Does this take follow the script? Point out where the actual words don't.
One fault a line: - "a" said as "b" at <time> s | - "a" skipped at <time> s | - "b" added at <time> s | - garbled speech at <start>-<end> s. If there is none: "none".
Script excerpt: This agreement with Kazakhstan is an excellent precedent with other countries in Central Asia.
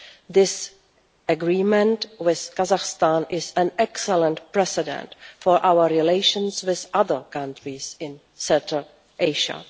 - "for our relations" added at 5.4 s